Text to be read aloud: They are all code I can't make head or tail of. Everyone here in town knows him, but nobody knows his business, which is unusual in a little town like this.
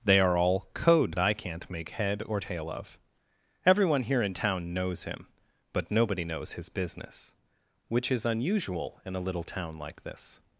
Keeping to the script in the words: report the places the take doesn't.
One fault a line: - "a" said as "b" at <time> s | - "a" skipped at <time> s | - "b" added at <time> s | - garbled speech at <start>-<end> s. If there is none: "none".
none